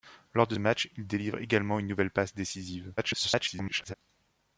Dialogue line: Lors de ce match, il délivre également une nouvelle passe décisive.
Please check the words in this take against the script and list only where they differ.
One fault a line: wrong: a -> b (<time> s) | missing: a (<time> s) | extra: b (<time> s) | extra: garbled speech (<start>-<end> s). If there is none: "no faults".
missing: ce (0.6 s)
extra: garbled speech (3.0-3.9 s)